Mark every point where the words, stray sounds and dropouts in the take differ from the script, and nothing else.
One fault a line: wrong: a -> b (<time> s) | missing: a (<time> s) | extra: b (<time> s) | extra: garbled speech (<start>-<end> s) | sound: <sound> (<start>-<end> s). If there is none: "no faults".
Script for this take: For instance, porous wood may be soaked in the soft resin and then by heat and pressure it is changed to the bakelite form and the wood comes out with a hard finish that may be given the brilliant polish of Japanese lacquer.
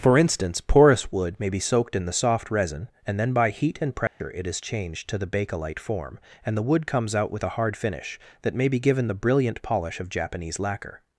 sound: dropout (4.1-4.2 s)